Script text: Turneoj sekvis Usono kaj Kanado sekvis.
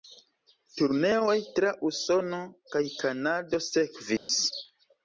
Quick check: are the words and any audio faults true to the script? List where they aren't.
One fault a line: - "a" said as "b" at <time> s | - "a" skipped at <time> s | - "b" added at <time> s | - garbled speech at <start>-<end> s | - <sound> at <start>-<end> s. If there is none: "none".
- "sekvis" said as "tra" at 1.6 s
- dropout at 4.2-4.3 s